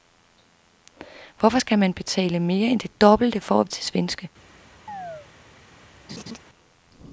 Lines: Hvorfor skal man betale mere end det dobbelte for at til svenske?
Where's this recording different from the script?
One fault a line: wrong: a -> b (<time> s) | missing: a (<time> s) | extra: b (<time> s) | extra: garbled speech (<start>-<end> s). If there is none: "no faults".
no faults